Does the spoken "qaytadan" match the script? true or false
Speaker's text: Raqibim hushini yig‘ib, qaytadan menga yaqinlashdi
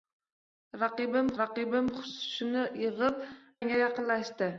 false